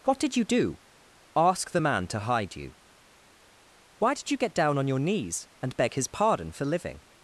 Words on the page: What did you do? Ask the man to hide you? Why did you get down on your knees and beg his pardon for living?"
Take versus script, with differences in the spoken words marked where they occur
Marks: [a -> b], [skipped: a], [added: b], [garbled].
What did you do? Ask the man to hide you? Why did you get down on your knees and beg his pardon for living?"